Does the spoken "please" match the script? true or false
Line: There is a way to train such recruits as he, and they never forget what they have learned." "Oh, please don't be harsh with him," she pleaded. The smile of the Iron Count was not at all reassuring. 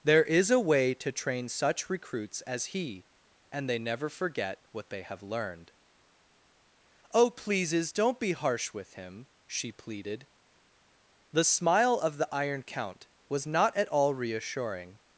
false